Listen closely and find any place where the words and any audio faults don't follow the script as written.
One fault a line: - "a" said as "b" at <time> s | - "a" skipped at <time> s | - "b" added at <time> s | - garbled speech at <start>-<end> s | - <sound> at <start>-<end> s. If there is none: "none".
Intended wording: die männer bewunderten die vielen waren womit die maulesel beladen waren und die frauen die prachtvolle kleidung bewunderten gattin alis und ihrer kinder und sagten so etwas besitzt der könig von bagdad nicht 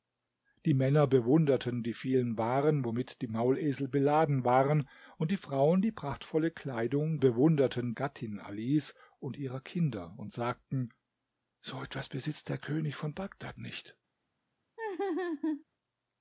- laugh at 14.8-15.6 s